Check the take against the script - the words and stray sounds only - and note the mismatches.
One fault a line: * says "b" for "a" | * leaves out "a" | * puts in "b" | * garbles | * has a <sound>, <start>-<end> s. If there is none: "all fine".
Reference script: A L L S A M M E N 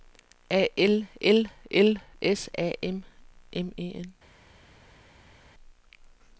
* puts in "L"